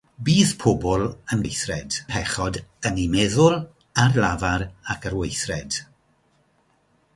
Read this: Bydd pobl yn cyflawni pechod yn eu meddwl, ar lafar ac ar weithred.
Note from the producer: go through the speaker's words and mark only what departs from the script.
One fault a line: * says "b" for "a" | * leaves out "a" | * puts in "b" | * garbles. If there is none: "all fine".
* says "weithred" for "cyflawni"